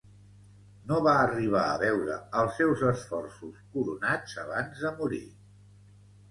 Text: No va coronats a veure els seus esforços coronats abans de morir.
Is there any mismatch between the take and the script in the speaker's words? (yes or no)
yes